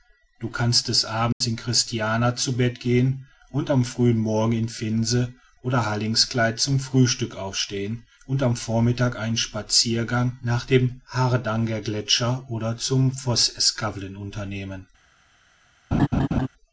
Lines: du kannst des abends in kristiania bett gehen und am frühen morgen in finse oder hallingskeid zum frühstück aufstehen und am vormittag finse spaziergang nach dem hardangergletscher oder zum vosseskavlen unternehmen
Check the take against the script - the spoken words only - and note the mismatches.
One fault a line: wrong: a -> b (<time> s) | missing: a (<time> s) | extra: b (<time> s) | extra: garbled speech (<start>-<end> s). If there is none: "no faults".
extra: zu (2.4 s)
wrong: finse -> einen (9.2 s)